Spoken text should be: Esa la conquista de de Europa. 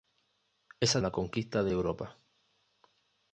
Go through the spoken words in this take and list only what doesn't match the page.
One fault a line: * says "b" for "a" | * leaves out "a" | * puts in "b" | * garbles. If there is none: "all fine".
all fine